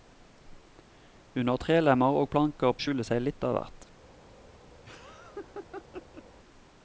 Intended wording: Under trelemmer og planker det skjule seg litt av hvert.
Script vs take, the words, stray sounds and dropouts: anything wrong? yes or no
yes